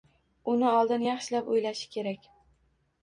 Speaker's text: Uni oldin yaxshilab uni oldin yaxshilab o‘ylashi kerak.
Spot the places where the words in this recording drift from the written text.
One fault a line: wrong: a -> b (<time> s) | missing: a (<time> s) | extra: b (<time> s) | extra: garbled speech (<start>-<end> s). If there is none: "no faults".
missing: uni oldin yaxshilab (1.5 s)